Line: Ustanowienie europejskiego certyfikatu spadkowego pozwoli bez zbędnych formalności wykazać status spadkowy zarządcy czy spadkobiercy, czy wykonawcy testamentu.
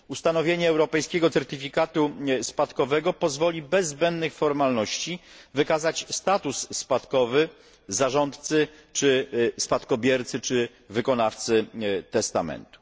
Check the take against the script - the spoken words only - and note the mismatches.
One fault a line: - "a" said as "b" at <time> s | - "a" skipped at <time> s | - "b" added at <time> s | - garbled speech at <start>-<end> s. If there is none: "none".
none